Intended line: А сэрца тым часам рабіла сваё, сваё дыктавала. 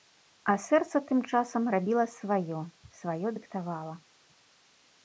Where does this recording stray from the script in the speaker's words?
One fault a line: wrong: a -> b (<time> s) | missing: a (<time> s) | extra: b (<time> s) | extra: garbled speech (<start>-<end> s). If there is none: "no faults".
no faults